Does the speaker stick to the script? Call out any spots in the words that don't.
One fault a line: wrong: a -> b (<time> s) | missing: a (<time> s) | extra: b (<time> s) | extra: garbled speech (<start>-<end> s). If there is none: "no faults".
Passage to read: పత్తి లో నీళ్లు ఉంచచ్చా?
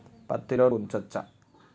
missing: నీళ్లు (0.7 s)